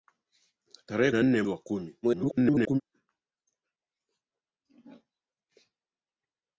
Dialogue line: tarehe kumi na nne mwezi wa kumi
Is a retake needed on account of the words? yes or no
yes